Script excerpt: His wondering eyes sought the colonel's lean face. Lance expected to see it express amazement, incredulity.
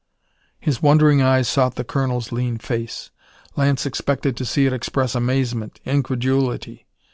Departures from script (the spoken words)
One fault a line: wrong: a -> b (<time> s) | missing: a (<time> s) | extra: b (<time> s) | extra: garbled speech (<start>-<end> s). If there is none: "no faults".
no faults